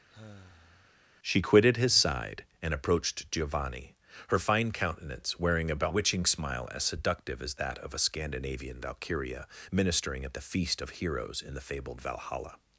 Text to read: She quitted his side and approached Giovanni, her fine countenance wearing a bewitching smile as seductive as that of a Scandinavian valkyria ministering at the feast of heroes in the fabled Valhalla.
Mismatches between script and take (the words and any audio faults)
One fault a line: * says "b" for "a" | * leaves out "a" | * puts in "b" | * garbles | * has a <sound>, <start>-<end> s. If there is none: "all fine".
* has a sigh, 0.1-1.0 s